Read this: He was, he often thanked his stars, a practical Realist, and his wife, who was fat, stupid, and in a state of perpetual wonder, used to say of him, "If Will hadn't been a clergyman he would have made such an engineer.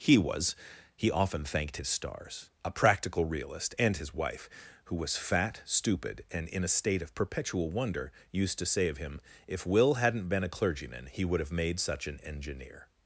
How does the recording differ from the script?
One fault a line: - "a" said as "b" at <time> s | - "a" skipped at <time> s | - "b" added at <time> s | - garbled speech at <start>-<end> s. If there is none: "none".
none